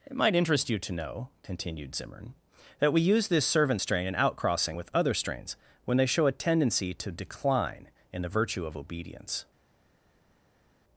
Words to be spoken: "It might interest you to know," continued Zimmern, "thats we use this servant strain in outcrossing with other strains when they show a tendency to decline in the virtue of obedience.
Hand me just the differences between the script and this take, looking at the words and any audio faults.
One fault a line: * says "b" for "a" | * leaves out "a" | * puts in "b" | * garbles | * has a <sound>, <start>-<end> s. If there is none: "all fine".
* says "that" for "thats"